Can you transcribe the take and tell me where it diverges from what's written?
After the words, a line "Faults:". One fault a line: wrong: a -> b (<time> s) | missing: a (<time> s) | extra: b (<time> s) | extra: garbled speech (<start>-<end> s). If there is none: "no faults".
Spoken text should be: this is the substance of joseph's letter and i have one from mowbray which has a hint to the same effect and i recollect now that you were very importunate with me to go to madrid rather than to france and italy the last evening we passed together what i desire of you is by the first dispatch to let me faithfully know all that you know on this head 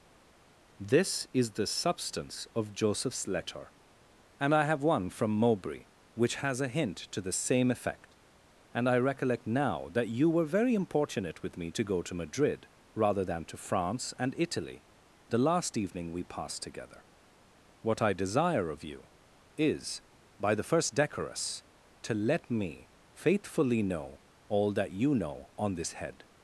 this is the substance of joseph's letter and i have one from mowbray which has a hint to the same effect and i recollect now that you were very importunate with me to go to madrid rather than to france and italy the last evening we passed together what i desire of you is by the first decorous to let me faithfully know all that you know on this head
Faults:
wrong: dispatch -> decorous (20.9 s)